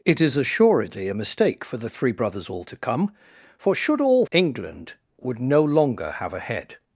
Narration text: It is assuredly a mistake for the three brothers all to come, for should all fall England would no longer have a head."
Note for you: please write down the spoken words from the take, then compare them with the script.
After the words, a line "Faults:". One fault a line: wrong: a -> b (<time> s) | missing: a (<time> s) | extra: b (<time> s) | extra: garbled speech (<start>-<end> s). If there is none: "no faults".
It is assuredly a mistake for the three brothers all to come, for should all England would no longer have a head."
Faults:
missing: fall (4.2 s)